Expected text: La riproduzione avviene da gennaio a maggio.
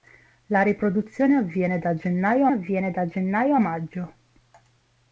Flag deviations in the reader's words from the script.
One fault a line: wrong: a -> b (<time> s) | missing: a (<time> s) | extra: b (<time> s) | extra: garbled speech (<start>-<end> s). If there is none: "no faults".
extra: avviene da gennaio (2.5 s)